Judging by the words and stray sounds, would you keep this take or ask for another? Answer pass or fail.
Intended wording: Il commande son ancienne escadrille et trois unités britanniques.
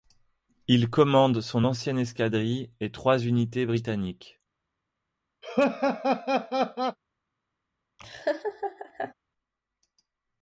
fail